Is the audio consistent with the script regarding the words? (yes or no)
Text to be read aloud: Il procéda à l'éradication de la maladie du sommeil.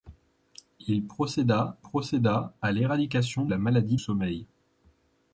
no